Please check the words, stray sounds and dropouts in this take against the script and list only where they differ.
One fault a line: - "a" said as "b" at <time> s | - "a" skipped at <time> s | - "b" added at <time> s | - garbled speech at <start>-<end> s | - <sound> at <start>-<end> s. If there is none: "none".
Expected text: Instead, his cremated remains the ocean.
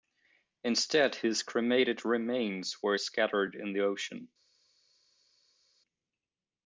- "were scattered in" added at 2.8 s